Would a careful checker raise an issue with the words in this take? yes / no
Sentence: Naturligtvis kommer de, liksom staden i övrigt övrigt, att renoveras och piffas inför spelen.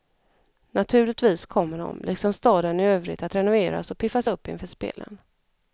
yes